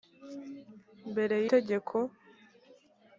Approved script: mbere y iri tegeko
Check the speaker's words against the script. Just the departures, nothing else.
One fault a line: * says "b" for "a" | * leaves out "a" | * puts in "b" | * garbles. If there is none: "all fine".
* leaves out "iri"